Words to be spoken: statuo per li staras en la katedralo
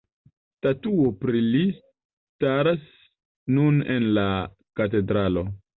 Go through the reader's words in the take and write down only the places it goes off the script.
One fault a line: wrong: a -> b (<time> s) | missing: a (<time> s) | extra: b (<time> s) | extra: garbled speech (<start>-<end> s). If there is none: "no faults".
wrong: per -> pri (1.2 s)
extra: nun (3.6 s)